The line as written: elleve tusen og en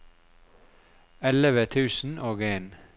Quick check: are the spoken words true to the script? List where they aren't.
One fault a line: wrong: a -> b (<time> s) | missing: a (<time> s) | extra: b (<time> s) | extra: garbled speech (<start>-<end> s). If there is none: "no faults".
no faults